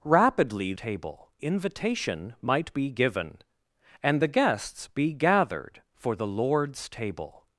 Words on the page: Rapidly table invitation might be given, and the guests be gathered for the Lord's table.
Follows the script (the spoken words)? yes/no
yes